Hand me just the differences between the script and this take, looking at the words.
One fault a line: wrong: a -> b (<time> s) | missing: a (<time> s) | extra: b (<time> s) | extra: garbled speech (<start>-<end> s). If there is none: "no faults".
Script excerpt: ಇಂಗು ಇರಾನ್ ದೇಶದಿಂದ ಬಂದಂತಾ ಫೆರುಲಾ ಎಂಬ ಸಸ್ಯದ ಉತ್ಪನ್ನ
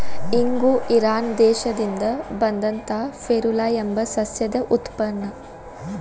no faults